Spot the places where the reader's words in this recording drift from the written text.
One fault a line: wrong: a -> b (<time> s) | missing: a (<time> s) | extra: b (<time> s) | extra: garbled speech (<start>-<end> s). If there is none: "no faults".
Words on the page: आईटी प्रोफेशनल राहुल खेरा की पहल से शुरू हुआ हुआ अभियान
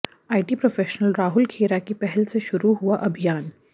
missing: हुआ (3.0 s)